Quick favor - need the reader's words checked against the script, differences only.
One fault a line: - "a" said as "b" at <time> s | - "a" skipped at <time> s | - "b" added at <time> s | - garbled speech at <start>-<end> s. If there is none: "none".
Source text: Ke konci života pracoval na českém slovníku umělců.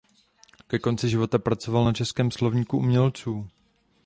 none